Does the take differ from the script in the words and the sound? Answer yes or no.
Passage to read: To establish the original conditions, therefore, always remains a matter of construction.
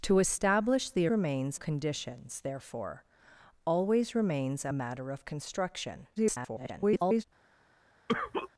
yes